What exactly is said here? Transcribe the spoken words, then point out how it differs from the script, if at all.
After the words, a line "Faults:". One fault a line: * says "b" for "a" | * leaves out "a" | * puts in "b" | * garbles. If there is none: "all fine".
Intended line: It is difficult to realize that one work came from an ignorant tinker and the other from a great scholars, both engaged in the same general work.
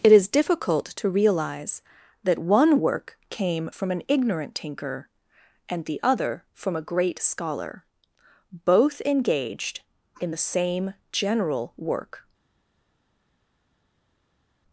It is difficult to realize that one work came from an ignorant tinker and the other from a great scholar, both engaged in the same general work.
Faults:
* says "scholar" for "scholars"